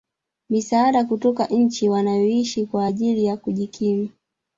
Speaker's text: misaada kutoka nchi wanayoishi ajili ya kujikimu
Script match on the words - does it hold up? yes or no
no